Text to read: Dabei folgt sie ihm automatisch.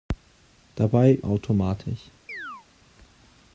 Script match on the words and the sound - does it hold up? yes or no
no